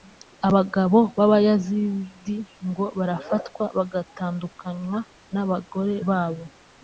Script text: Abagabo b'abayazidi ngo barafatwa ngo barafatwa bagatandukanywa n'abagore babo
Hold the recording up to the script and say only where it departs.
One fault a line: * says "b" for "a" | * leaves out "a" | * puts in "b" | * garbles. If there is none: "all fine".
* leaves out "ngo barafatwa"